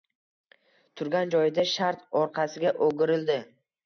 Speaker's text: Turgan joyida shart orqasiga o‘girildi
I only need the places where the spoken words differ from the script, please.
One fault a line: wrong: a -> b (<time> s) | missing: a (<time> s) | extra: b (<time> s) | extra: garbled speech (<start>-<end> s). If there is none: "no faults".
no faults